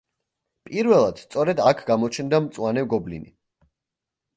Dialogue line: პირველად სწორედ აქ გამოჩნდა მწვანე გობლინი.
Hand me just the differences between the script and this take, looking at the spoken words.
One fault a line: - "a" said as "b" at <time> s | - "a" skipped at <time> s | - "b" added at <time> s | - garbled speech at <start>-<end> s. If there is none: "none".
none